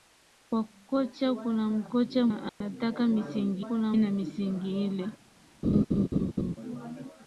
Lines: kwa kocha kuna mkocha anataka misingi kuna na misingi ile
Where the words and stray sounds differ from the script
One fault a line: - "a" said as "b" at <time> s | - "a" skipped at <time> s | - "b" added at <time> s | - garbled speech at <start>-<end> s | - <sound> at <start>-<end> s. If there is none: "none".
- dropout at 2.5-2.6 s
- laugh at 5.6-6.6 s